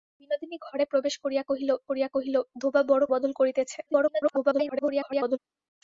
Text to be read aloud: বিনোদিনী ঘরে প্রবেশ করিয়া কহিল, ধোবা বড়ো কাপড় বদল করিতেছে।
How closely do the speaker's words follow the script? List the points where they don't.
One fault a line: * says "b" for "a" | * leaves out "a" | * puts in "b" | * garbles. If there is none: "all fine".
* puts in "করিয়া কহিল"
* leaves out "কাপড়"
* garbles